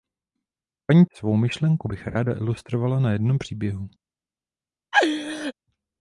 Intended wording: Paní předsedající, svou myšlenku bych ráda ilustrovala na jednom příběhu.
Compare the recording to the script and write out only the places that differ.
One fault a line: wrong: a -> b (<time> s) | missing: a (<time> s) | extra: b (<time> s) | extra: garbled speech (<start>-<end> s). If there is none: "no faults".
missing: předsedající (1.1 s)